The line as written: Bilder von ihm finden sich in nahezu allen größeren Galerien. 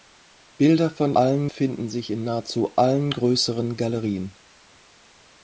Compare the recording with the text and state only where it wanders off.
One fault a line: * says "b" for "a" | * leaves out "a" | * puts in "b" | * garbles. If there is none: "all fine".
* says "allen" for "ihm"